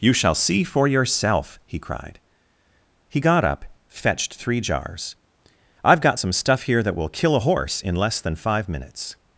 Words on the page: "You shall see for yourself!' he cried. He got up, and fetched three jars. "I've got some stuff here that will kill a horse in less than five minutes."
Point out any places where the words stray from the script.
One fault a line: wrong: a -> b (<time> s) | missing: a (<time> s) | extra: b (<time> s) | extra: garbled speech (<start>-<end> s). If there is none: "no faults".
missing: and (3.6 s)